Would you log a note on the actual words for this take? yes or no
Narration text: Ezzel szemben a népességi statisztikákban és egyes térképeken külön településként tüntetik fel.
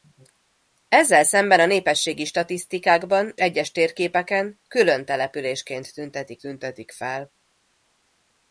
yes